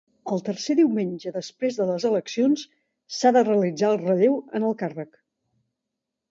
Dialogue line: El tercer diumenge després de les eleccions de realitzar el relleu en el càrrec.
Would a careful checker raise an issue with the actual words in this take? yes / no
yes